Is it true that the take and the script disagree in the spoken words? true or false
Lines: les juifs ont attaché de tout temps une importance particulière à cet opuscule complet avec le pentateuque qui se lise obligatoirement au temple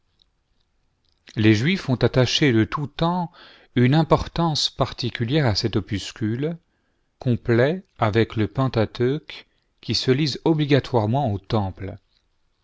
false